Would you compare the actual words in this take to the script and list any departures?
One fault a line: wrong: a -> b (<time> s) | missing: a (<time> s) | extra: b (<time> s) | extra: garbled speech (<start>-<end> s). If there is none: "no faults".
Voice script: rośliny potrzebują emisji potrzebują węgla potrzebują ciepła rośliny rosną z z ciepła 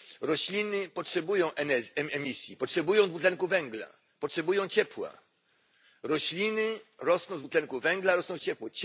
extra: dwutlenku (3.1 s)
extra: dwutlenku węgla rosną (7.4 s)